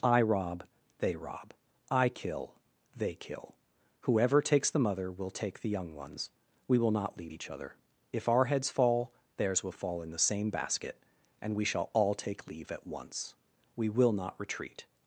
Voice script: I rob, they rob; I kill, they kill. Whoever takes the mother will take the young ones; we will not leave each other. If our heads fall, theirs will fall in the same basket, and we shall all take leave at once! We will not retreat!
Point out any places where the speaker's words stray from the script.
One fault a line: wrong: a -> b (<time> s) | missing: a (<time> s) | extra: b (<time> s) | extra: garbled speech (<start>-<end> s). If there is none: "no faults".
no faults